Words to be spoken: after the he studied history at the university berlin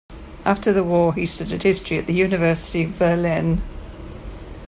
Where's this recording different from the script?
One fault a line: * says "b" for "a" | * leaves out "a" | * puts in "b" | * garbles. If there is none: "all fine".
* puts in "war"
* puts in "of"